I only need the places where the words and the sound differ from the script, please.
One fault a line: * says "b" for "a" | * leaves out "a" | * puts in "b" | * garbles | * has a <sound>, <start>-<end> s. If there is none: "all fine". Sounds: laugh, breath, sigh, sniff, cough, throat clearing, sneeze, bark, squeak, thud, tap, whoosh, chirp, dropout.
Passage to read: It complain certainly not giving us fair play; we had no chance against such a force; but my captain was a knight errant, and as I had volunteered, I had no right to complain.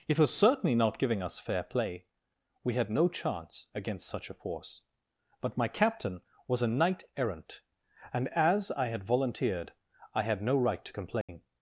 * says "was" for "complain"
* has a dropout, 11.2-11.3 s